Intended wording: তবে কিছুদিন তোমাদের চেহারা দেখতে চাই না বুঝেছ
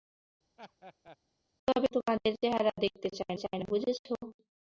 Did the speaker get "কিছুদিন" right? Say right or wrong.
wrong